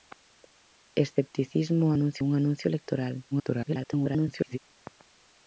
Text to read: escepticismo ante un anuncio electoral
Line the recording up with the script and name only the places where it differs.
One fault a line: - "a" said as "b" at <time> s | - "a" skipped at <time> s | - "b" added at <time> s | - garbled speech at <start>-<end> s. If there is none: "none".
- "ante" said as "anuncio" at 1.9 s
- garbled speech at 3.3-4.6 s